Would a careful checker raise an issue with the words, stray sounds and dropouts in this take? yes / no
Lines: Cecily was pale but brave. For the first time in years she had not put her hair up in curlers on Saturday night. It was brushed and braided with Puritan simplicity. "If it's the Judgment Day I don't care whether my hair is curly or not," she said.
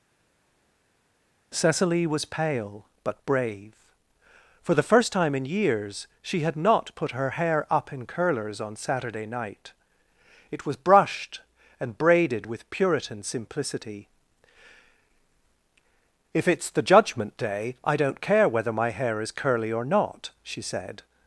no